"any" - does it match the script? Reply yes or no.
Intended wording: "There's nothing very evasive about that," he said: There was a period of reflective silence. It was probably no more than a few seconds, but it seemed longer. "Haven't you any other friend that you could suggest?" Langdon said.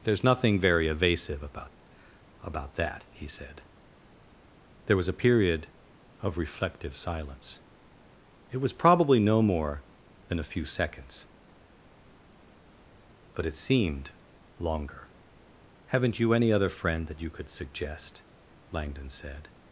yes